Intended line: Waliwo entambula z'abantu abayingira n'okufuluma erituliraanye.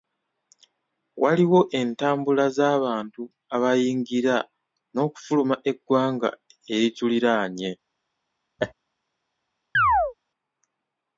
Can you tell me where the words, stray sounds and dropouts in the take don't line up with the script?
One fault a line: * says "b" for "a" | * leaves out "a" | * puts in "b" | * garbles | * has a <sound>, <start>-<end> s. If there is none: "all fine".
* puts in "eggwanga"
* has a laugh, 8.6-8.7 s
* has a chirp, 9.7-10.1 s